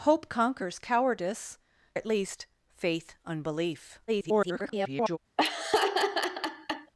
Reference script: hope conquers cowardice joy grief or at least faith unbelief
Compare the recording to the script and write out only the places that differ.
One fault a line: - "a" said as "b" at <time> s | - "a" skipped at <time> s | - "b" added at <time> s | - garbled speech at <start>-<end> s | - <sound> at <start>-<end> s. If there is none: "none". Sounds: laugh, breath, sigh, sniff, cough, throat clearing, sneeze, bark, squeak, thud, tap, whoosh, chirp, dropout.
- "joy grief or" skipped at 1.6 s
- garbled speech at 4.1-5.2 s
- laugh at 5.4-6.9 s